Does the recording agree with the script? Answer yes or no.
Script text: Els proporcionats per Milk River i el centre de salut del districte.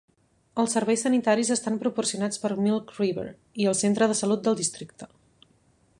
no